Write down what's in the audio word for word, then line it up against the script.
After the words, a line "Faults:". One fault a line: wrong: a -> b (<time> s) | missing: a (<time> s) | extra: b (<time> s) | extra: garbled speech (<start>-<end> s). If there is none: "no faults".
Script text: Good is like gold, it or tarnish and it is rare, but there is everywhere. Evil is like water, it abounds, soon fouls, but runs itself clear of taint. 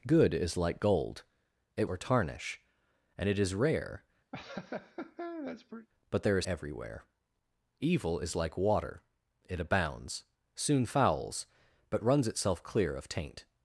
Good is like gold, it or tarnish and it is rare, but there is everywhere. Evil is like water, it abounds, soon fouls, but runs itself clear of taint.
Faults:
no faults